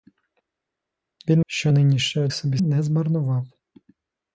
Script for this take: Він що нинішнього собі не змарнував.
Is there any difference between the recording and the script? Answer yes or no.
no